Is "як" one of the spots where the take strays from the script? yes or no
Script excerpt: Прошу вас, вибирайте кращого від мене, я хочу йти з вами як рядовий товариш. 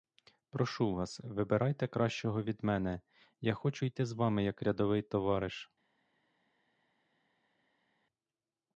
no